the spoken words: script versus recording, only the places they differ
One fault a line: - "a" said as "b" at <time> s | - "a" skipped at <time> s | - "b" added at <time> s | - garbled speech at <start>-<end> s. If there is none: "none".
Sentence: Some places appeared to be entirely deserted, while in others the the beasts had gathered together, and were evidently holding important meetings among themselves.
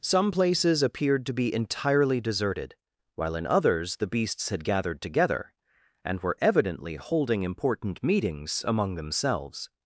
- "the" skipped at 4.1 s